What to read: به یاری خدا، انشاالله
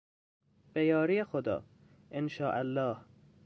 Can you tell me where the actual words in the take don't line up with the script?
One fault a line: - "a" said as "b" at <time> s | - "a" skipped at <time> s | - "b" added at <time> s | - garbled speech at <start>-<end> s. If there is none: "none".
none